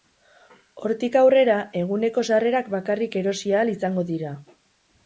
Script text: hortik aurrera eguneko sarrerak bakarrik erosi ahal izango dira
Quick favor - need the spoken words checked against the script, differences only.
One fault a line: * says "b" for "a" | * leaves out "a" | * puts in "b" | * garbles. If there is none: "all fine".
all fine